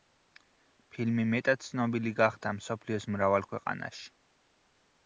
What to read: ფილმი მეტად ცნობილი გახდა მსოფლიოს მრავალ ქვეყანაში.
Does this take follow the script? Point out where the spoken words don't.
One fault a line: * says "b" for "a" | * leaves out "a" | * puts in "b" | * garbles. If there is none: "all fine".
all fine